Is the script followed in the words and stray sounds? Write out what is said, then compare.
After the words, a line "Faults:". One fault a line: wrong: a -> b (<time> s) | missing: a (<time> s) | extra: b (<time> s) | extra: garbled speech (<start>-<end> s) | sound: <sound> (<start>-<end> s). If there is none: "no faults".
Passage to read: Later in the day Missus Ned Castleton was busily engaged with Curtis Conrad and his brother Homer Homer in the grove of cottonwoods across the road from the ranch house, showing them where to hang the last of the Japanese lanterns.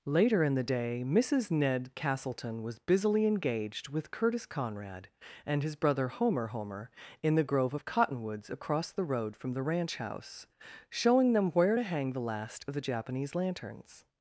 Later in the day Missus Ned Castleton was busily engaged with Curtis Conrad and his brother Homer Homer in the grove of cottonwoods across the road from the ranch house, showing them where to hang the last of the Japanese lanterns.
Faults:
no faults